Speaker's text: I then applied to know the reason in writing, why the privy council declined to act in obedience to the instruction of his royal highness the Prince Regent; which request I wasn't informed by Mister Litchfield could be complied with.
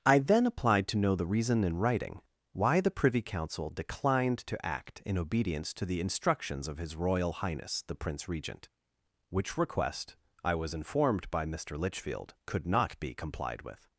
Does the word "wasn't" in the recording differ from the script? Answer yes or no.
yes